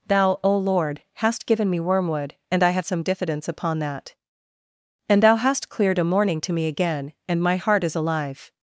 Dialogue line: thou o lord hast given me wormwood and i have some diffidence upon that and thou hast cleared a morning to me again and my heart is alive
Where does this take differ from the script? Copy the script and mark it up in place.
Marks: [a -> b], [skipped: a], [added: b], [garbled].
thou o lord hast given me wormwood and i have some diffidence upon that and thou hast cleared a morning to me again and my heart is alive